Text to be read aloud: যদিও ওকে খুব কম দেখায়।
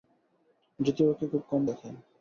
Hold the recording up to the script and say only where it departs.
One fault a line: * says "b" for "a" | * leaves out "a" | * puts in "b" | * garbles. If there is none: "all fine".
all fine